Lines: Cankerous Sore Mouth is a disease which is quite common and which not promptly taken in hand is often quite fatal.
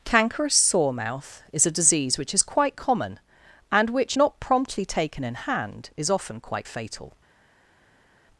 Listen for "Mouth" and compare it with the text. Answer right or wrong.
right